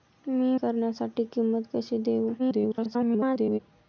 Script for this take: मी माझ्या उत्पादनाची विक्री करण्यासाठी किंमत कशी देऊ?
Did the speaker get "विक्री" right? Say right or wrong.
wrong